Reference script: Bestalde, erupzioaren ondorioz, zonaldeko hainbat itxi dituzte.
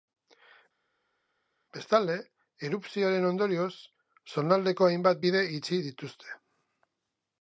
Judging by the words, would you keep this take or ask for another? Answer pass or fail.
fail